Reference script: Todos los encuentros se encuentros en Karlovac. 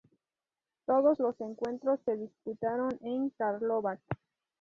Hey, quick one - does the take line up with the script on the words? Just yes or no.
no